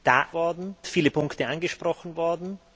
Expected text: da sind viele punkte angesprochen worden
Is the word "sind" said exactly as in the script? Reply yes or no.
no